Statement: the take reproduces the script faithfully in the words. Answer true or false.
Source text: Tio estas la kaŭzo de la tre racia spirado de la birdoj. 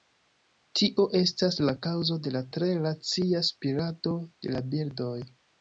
true